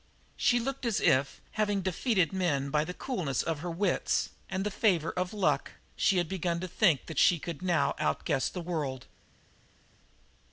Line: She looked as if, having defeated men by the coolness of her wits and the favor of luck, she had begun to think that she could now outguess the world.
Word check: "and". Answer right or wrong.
right